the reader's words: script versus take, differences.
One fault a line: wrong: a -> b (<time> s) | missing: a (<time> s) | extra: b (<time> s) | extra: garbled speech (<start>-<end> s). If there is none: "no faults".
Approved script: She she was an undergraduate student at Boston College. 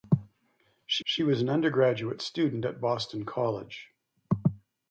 no faults